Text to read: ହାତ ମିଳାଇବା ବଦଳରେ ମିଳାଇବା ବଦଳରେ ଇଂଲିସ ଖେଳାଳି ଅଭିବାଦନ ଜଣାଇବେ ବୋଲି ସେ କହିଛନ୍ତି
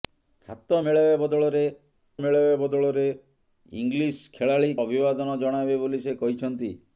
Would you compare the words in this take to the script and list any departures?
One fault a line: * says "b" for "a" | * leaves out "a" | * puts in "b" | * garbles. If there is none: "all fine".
all fine